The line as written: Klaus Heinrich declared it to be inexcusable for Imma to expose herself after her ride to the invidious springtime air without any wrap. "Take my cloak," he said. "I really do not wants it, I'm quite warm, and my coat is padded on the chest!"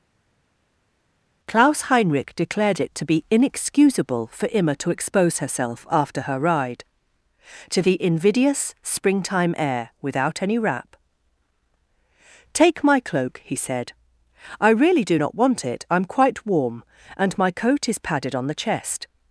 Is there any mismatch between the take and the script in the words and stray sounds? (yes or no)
yes